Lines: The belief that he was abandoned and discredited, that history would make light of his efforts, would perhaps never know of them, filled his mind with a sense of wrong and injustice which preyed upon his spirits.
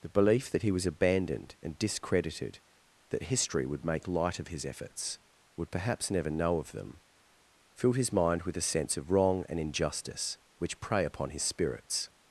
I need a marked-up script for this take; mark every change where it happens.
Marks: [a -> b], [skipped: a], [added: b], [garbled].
The belief that he was abandoned and discredited, that history would make light of his efforts, would perhaps never know of them, filled his mind with a sense of wrong and injustice which [preyed -> prey] upon his spirits.